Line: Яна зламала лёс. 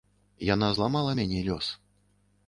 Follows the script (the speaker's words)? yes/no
no